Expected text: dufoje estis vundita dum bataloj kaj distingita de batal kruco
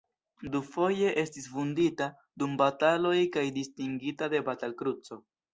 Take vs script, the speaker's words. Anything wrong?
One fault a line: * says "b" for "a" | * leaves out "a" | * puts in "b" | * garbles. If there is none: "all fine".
all fine